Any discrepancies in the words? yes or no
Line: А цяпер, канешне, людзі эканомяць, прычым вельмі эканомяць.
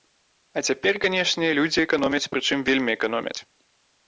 no